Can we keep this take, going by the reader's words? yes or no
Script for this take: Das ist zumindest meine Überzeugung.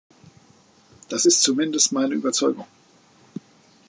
yes